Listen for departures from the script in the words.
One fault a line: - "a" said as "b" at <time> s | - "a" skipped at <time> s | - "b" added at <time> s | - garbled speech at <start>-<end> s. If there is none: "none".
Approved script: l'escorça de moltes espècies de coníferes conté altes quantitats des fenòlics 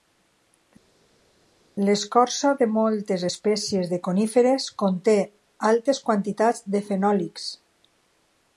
- "des" said as "de" at 6.7 s